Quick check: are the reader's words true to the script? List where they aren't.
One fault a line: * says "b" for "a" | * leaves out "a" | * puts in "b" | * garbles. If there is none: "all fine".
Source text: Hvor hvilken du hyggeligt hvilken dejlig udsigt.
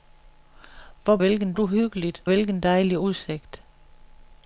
all fine